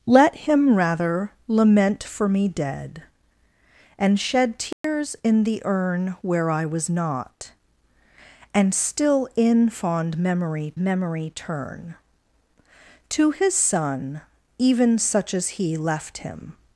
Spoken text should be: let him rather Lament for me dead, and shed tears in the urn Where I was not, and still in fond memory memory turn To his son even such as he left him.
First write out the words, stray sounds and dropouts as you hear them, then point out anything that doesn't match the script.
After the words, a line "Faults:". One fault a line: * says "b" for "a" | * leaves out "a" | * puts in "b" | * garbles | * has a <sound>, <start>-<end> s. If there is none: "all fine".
let him rather Lament for me dead, and shed tears in the urn Where I was not, and still in fond memory memory turn To his son even such as he left him.
Faults:
* has a dropout, 4.7-4.8 s